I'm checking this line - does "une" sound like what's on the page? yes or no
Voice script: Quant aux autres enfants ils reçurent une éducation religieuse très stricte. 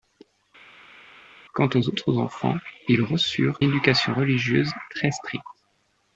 no